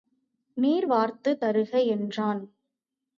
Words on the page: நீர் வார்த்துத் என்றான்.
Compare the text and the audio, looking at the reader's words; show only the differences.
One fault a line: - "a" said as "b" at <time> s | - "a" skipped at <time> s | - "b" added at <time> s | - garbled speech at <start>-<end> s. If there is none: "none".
- "தருக" added at 1.4 s